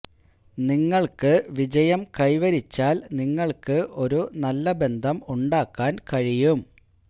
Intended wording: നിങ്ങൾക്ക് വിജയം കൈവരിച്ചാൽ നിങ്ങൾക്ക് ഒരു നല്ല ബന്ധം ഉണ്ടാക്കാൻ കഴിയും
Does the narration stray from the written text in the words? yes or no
no